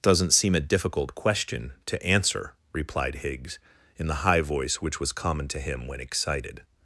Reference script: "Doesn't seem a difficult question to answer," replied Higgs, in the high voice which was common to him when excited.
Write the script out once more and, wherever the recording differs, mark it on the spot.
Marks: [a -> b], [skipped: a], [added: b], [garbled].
"Doesn't seem a difficult question to answer," replied Higgs, in the high voice which was common to him when excited.